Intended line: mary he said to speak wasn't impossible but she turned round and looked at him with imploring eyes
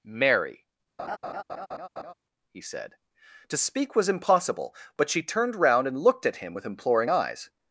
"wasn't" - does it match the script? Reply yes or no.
no